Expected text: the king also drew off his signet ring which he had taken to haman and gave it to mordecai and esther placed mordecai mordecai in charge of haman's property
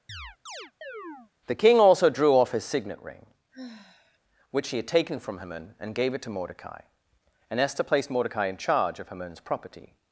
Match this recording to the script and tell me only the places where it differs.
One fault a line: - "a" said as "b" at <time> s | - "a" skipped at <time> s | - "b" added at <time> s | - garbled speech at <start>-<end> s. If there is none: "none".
- "to" said as "from" at 5.2 s
- "mordecai" skipped at 8.5 s